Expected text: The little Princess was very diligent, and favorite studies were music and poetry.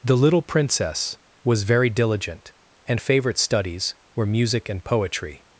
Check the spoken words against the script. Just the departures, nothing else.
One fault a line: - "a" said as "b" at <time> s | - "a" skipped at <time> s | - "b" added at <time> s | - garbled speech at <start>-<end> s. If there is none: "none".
none